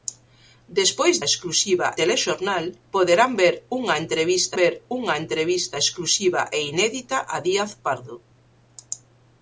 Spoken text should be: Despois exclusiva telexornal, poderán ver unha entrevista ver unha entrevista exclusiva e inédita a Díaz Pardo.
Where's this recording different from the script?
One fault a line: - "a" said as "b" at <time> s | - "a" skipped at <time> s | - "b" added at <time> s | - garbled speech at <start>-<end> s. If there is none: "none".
none